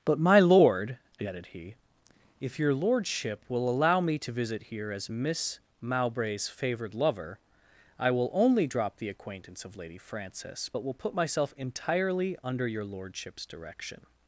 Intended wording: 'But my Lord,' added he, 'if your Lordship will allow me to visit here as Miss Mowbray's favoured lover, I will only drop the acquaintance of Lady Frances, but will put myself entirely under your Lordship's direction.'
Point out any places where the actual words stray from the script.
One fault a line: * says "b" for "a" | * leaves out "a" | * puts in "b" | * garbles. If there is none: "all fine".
all fine